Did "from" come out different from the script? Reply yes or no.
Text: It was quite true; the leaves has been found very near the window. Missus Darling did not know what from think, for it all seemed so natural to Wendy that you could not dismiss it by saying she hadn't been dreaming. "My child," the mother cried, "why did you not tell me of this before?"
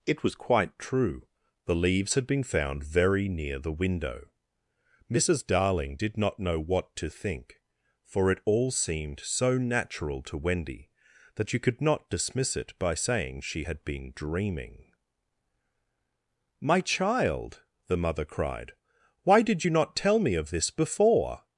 yes